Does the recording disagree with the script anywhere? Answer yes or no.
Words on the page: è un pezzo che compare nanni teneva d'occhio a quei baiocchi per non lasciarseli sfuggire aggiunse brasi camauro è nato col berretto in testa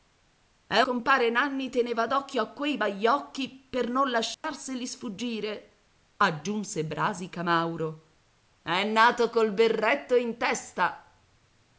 yes